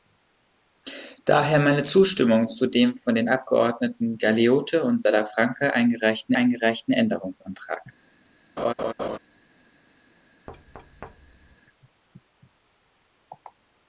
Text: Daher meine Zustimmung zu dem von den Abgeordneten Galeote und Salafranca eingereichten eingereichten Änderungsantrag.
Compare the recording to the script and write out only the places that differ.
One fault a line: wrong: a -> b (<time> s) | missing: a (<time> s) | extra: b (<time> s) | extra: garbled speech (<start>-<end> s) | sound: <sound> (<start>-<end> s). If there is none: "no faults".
sound: laugh (8.6-9.2 s)
sound: thud (10.5-11.6 s)